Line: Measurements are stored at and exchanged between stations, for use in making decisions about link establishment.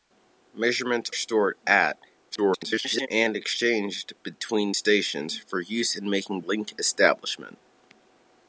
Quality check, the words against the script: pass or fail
fail